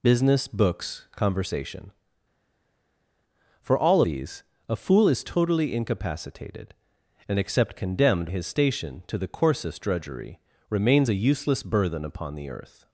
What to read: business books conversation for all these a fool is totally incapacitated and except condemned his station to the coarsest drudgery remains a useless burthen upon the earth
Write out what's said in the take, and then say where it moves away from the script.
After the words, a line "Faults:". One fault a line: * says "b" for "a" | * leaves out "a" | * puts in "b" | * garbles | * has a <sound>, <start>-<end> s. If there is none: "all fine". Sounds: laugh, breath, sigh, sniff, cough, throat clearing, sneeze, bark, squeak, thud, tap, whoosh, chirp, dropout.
business books conversation for all these a fool is totally incapacitated and except condemned his station to the coarsest drudgery remains a useless burthen upon the earth
Faults:
all fine